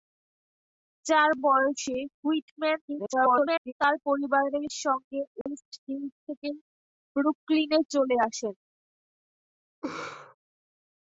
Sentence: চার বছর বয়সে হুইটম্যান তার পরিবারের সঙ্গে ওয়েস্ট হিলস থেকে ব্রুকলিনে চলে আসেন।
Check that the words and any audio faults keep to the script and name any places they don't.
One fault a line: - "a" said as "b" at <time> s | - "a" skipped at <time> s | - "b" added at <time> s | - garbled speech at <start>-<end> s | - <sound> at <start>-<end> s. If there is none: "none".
- "বছর" skipped at 1.3 s
- garbled speech at 2.9-3.7 s
- dropout at 5.4-5.5 s
- laugh at 9.8-10.3 s